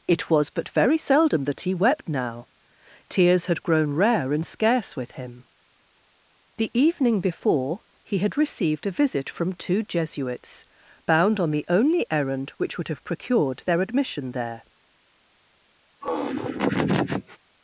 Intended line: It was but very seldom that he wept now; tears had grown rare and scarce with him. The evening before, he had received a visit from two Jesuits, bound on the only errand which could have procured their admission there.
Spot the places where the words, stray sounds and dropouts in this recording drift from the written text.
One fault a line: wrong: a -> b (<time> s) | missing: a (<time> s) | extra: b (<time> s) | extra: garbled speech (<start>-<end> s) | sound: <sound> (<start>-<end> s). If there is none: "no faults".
wrong: could -> would (12.8 s)
sound: laugh (16.0-17.4 s)